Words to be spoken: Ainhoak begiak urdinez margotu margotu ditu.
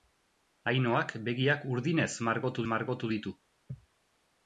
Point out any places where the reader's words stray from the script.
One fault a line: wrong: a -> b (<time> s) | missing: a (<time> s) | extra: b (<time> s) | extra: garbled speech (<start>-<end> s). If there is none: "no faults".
no faults